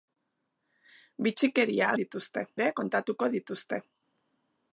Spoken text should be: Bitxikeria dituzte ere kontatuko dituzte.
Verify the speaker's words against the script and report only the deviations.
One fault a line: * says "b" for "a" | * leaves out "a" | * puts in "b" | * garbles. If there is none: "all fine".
all fine